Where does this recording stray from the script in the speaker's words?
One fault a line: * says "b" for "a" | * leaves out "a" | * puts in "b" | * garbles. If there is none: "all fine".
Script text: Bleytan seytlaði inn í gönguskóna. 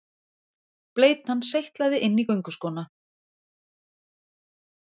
all fine